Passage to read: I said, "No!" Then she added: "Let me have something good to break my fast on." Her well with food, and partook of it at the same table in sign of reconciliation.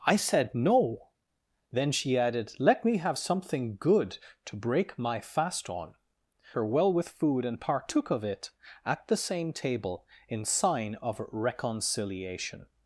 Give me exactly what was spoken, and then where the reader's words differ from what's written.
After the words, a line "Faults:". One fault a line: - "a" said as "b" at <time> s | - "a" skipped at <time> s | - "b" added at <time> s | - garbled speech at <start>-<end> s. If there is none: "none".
I said, "No!" Then she added: "Let me have something good to break my fast on." Her well with food, and partook of it at the same table in sign of reconciliation.
Faults:
none